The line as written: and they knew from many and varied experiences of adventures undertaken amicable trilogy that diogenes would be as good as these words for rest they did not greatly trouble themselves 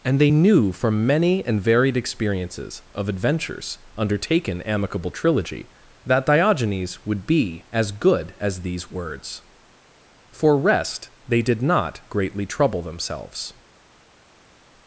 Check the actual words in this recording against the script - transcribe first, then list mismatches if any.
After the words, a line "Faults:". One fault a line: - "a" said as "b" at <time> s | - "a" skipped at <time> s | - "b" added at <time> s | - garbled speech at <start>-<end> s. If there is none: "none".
and they knew from many and varied experiences of adventures undertaken amicable trilogy that diogenes would be as good as these words for rest they did not greatly trouble themselves
Faults:
none